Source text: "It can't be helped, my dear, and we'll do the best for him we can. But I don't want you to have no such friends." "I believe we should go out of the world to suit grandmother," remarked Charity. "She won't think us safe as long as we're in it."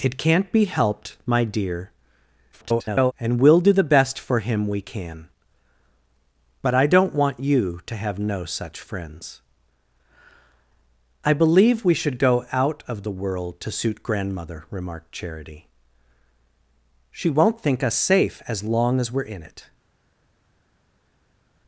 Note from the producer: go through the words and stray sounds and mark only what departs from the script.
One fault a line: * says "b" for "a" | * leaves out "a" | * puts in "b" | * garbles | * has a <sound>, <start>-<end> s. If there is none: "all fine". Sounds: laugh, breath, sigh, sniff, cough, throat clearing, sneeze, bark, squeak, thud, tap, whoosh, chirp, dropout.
* garbles